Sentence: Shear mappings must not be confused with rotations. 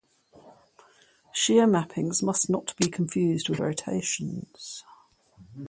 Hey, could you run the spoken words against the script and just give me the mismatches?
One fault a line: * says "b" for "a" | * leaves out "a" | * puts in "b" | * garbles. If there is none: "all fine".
all fine